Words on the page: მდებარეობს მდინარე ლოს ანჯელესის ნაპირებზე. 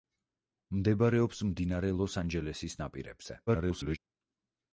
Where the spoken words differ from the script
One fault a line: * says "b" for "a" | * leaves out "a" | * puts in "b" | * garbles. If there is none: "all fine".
* garbles